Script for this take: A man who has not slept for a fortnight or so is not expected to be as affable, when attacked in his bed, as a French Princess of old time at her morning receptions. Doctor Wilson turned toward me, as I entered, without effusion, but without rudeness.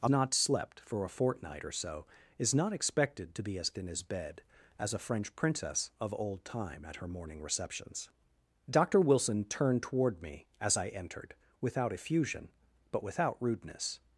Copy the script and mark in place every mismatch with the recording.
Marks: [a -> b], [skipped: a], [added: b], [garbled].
A [skipped: man who has] not slept for a fortnight or so is not expected to be as [skipped: affable, when attacked] in his bed, as a French Princess of old time at her morning receptions. Doctor Wilson turned toward me, as I entered, without effusion, but without rudeness.